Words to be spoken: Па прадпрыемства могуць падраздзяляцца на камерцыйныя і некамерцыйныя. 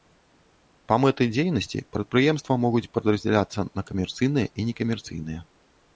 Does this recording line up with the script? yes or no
no